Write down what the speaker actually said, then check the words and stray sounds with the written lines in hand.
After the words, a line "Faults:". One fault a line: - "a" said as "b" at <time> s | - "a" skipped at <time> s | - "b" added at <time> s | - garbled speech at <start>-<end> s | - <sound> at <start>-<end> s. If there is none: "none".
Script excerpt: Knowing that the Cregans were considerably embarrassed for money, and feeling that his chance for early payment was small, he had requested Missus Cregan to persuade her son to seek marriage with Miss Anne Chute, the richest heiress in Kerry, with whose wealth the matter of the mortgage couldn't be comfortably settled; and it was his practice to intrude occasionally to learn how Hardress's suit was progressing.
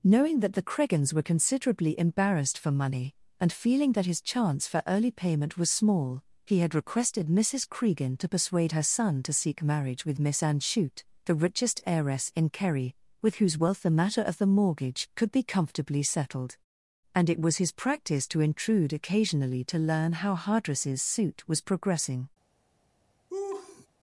Knowing that the Cregans were considerably embarrassed for money, and feeling that his chance for early payment was small, he had requested Missus Cregan to persuade her son to seek marriage with Miss Anne Chute, the richest heiress in Kerry, with whose wealth the matter of the mortgage could be comfortably settled; and it was his practice to intrude occasionally to learn how Hardress's suit was progressing.
Faults:
- "couldn't" said as "could" at 15.2 s
- laugh at 23.3-23.9 s